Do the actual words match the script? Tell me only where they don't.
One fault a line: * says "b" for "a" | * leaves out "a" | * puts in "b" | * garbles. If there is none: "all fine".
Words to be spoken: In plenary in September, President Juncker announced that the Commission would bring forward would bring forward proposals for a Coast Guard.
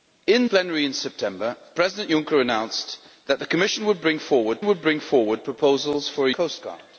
all fine